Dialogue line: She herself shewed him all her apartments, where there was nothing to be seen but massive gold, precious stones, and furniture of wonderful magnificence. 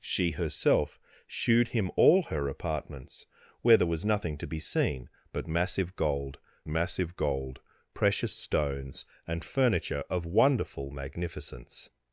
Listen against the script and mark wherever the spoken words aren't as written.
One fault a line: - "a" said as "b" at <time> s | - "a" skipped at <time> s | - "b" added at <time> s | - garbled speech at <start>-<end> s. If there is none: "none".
- "massive gold" added at 6.7 s